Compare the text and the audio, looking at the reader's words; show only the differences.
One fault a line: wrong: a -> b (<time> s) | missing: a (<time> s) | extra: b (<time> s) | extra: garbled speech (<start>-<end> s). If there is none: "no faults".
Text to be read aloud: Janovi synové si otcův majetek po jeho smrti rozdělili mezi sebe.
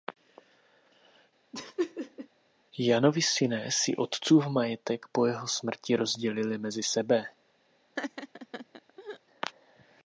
no faults